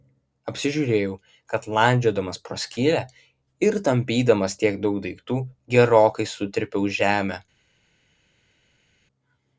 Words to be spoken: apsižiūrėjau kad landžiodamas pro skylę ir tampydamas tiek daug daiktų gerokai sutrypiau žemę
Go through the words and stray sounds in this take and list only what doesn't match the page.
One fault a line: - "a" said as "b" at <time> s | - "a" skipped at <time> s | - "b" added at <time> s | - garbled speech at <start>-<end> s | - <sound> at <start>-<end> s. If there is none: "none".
none